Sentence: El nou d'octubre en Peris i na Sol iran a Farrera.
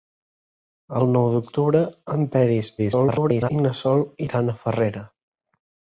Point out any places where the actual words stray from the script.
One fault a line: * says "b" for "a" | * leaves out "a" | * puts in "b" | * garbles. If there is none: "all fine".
* garbles